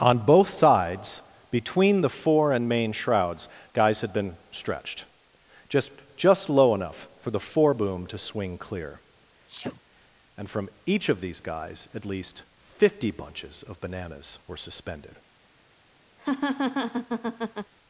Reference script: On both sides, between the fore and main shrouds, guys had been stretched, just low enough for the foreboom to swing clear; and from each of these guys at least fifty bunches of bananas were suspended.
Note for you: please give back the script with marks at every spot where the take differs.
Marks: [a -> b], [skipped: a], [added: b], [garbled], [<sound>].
On both sides, between the fore and main shrouds, guys had been stretched, just [added: just] low enough for the foreboom to swing clear; [sneeze] and from each of these guys at least fifty bunches of bananas were suspended. [laugh]